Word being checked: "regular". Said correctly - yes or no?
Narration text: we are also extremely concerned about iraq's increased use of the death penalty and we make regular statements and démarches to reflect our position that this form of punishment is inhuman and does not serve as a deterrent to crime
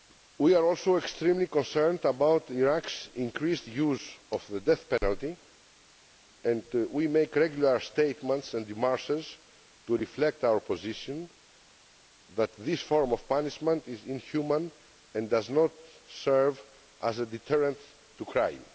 yes